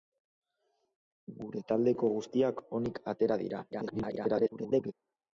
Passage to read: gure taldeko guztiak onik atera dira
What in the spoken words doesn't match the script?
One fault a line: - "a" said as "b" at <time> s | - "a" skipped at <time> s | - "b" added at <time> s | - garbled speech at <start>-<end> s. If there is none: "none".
- garbled speech at 3.7-4.9 s